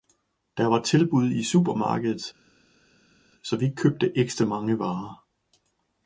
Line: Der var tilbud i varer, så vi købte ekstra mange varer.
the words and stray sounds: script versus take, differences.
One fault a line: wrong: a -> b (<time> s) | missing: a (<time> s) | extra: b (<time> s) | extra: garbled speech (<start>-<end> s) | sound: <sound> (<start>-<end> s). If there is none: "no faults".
wrong: varer -> supermarkedet (1.4 s)